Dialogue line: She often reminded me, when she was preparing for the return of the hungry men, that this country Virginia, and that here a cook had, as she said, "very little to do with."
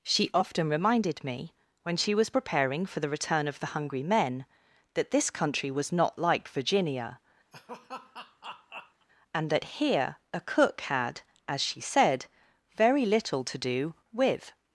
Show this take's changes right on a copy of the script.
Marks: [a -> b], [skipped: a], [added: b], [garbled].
She often reminded me, when she was preparing for the return of the hungry men, that this country [added: was not like] Virginia, and that here a cook had, as she said, "very little to do with."